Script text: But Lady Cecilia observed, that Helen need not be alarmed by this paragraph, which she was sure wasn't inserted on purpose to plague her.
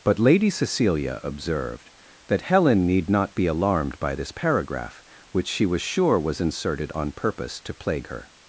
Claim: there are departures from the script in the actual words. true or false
true